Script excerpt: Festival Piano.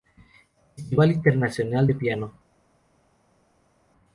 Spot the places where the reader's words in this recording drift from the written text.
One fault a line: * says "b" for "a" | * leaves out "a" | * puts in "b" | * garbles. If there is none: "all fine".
* puts in "Internacional de"